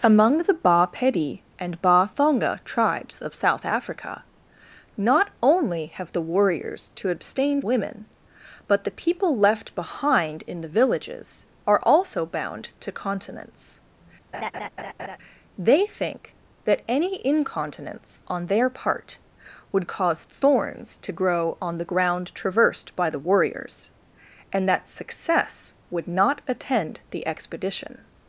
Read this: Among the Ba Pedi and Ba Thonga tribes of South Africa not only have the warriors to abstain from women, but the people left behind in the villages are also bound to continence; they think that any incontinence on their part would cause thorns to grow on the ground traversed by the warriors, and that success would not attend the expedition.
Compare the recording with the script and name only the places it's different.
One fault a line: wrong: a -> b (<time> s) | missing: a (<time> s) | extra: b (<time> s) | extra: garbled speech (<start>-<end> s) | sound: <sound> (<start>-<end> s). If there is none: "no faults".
missing: from (7.6 s)
sound: laugh (14.3-15.2 s)